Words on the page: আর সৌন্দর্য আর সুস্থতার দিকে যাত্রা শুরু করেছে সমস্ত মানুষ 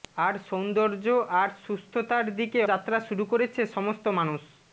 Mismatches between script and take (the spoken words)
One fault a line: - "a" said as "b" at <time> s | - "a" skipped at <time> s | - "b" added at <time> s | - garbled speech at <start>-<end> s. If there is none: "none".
none